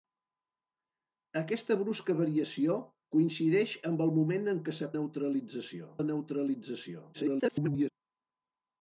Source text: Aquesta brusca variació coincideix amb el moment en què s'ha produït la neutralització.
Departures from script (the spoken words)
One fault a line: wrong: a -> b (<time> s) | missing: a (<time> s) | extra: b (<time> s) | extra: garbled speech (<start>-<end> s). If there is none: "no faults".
wrong: produït -> neutralització (5.0 s)
extra: garbled speech (7.1-7.9 s)